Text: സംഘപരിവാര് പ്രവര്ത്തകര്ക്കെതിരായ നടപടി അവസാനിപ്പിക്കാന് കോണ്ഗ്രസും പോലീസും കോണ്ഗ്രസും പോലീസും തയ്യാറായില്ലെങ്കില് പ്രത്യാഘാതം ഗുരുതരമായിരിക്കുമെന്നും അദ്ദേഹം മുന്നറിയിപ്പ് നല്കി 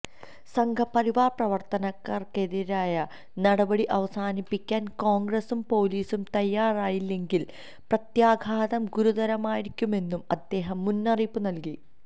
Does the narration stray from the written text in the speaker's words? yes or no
yes